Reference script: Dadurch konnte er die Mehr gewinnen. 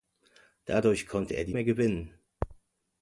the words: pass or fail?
pass